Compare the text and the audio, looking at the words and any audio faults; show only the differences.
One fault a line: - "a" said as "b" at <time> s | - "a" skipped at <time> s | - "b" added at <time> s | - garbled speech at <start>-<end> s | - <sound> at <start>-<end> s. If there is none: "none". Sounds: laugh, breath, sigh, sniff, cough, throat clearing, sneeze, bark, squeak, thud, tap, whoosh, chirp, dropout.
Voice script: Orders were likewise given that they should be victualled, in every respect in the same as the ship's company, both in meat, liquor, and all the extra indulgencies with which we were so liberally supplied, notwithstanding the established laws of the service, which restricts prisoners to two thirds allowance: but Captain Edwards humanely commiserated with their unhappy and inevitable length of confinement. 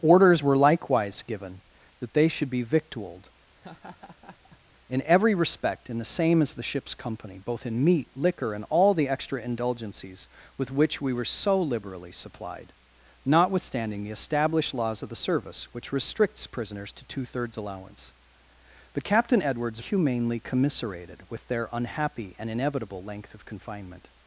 - laugh at 3.6-4.6 s